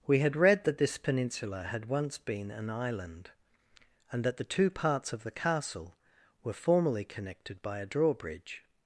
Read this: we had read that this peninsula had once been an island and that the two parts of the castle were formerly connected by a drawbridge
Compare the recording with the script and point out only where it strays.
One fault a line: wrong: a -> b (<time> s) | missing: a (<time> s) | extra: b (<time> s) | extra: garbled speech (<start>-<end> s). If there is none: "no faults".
no faults